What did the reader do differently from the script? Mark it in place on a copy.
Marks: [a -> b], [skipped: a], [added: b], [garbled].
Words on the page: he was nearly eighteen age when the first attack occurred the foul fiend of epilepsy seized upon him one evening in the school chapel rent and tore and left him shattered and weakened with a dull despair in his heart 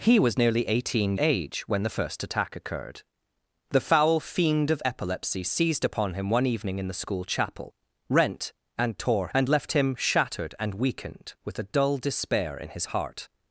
he was nearly eighteen age when the first attack occurred the foul fiend of epilepsy seized upon him one evening in the school chapel rent and tore and left him shattered and weakened with a dull despair in his heart